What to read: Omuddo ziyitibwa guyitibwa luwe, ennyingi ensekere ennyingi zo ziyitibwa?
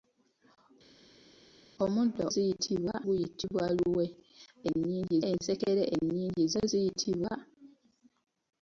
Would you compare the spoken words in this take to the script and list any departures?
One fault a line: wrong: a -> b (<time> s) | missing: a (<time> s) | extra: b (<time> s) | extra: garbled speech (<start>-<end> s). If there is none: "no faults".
no faults